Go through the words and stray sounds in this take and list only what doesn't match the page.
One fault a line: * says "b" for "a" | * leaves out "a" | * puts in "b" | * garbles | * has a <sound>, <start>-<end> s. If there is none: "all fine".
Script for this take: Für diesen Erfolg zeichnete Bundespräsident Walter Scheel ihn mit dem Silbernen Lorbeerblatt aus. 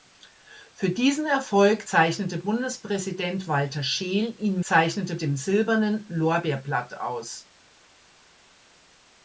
* says "zeichnete" for "mit"